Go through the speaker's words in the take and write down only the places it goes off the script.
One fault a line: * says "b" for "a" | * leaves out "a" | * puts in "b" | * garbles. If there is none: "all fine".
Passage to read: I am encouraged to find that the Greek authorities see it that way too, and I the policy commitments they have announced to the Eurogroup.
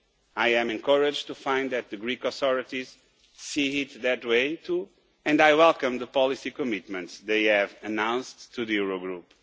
* puts in "welcome"